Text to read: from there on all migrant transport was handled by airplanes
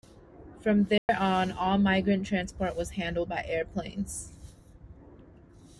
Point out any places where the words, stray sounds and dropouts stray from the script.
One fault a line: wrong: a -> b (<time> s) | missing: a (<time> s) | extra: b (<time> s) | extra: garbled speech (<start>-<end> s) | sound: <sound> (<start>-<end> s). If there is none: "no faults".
sound: dropout (1.0-1.1 s)